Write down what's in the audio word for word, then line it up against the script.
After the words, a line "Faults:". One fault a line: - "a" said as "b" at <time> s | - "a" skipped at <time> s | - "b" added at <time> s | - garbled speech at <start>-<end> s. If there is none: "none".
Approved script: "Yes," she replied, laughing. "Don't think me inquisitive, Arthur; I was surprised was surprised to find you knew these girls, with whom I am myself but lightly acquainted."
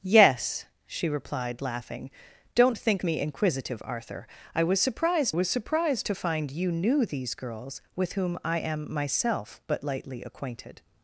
"Yes," she replied, laughing. "Don't think me inquisitive, Arthur; I was surprised was surprised to find you knew these girls, with whom I am myself but lightly acquainted."
Faults:
none